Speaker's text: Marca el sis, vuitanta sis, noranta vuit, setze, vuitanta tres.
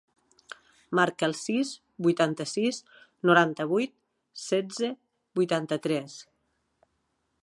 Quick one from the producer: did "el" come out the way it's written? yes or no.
yes